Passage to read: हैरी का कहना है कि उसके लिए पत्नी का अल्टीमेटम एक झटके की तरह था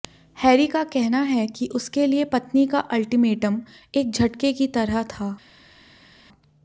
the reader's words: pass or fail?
pass